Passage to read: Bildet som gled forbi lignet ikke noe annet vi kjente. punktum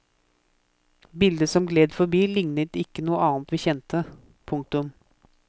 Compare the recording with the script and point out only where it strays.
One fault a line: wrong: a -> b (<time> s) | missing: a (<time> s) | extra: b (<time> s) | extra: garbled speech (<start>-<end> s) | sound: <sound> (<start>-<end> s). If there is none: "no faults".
no faults